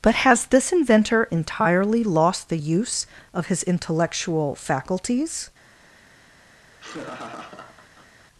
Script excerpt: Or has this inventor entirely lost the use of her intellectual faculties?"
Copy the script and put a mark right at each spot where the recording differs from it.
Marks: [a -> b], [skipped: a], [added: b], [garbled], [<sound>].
[Or -> But] has this inventor entirely lost the use of [her -> his] intellectual faculties?" [laugh]